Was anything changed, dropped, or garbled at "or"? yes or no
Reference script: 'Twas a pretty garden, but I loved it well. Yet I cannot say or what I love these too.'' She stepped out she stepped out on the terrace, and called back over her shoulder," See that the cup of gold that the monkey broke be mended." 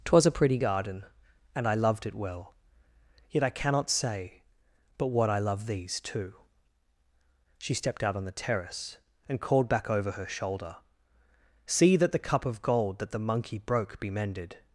yes